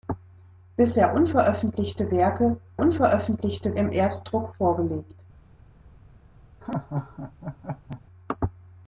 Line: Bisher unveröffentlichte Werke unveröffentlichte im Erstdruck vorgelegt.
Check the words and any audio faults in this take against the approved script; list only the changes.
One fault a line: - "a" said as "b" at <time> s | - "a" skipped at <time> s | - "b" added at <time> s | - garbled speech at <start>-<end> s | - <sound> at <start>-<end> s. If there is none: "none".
- laugh at 6.6-8.0 s